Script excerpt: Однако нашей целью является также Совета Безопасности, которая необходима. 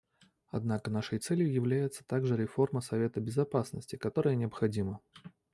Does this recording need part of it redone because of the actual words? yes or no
yes